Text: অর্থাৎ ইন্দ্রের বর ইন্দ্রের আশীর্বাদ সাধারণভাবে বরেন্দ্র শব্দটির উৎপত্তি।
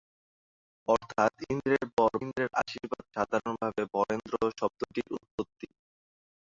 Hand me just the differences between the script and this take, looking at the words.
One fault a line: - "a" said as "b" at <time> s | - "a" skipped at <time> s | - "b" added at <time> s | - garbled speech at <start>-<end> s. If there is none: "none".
none